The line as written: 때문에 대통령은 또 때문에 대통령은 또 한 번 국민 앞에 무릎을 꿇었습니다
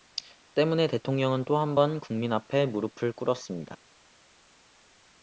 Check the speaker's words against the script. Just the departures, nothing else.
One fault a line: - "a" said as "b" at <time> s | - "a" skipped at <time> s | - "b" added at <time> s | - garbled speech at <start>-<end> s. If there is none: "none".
- "때문에 대통령은 또" skipped at 1.6 s